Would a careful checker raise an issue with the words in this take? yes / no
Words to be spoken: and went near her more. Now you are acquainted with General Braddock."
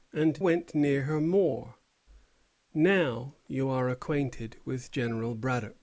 no